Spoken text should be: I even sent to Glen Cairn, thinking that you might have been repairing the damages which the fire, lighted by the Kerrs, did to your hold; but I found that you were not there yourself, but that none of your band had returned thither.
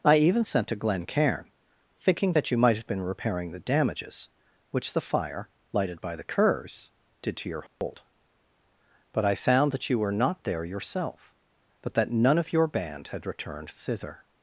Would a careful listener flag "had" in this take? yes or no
no